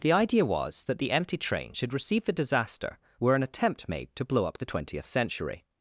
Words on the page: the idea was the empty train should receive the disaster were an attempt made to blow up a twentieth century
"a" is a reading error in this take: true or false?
true